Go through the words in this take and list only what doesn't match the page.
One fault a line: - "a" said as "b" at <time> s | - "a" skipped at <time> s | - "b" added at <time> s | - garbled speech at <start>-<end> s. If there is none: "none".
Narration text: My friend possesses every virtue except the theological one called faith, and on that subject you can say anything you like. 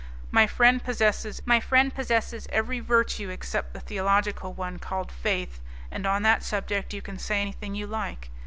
- "my friend possesses" added at 1.5 s